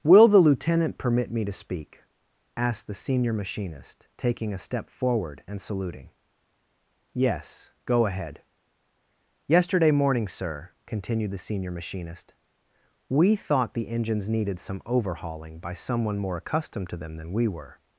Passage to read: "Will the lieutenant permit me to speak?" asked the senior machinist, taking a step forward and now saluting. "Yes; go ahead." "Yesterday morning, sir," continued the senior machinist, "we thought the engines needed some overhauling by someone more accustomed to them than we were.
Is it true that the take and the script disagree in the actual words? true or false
true